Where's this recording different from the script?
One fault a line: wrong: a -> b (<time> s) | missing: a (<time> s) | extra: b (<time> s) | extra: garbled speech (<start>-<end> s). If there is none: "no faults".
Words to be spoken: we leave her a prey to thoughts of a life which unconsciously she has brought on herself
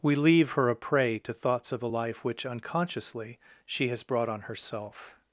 no faults